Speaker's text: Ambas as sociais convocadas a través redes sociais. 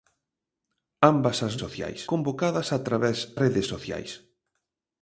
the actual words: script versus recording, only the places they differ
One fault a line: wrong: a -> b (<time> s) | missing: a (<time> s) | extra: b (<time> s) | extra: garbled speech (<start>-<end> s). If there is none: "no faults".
no faults